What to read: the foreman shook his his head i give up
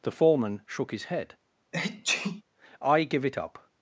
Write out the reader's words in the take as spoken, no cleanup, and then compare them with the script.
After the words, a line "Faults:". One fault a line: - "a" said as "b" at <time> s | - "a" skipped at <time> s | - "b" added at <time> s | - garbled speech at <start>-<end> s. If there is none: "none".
the foreman shook his head i give it up
Faults:
- "his" skipped at 1.1 s
- "it" added at 3.2 s